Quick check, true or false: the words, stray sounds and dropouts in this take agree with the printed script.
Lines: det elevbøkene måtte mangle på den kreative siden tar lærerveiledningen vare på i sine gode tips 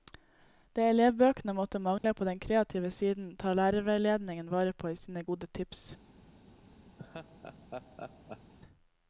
false